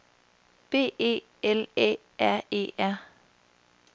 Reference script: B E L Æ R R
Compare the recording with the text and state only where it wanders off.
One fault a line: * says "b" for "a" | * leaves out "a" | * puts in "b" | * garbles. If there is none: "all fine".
* puts in "E"